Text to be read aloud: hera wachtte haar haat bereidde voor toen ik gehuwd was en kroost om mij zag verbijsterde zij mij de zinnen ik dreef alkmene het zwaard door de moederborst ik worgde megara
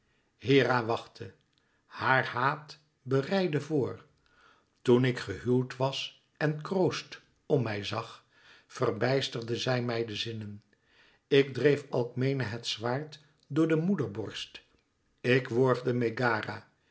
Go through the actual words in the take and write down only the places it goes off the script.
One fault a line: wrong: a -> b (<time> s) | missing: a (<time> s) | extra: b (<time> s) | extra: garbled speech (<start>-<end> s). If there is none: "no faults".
no faults